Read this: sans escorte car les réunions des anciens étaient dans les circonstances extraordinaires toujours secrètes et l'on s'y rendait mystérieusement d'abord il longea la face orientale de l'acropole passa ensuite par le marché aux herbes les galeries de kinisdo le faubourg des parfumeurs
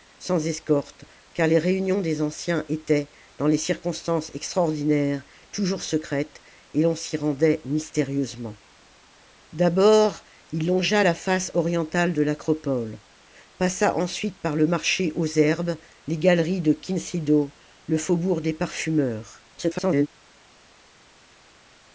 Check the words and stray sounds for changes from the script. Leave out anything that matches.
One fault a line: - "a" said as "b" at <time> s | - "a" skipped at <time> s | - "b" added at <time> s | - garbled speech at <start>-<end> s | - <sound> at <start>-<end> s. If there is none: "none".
- garbled speech at 19.5-20.1 s